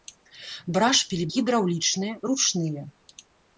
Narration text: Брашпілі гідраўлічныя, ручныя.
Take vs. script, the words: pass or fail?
pass